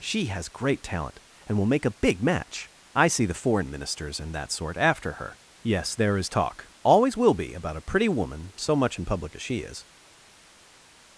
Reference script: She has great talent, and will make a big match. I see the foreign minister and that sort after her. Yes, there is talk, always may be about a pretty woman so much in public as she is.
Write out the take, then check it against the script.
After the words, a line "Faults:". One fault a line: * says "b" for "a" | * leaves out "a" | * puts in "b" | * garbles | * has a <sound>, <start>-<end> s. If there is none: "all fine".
She has great talent, and will make a big match. I see the foreign ministers and that sort after her. Yes, there is talk, always will be about a pretty woman so much in public as she is.
Faults:
* says "ministers" for "minister"
* says "will" for "may"